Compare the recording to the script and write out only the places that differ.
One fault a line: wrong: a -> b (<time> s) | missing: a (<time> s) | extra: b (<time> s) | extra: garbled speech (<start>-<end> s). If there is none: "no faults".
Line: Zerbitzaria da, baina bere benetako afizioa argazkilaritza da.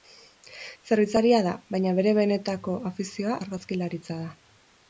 no faults